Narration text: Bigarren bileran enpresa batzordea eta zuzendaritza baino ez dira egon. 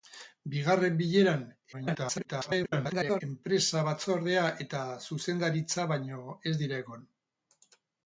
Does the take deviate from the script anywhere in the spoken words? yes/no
yes